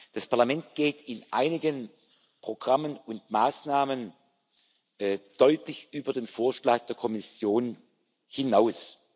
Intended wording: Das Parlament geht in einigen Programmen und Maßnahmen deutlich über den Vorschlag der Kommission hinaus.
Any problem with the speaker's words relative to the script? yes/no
no